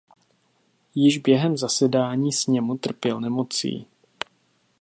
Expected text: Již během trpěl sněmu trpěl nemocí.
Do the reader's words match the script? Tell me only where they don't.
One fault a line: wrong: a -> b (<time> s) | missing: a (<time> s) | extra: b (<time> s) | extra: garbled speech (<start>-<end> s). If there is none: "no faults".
wrong: trpěl -> zasedání (1.6 s)